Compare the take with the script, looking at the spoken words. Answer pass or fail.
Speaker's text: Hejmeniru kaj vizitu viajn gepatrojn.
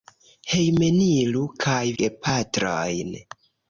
fail